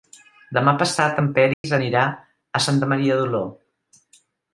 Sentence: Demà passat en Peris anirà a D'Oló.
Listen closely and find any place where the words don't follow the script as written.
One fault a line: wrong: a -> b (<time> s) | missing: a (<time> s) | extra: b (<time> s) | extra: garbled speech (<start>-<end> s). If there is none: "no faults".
extra: Santa Maria (2.6 s)